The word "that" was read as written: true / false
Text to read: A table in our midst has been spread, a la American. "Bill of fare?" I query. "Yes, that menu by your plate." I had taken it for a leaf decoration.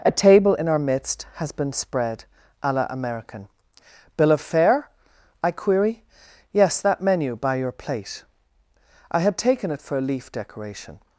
true